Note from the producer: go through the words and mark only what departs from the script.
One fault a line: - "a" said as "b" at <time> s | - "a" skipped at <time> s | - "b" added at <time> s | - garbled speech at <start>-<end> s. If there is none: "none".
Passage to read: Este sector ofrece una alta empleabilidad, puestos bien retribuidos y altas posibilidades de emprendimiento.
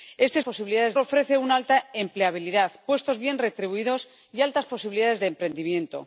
- "sector" said as "posibilidades" at 0.4 s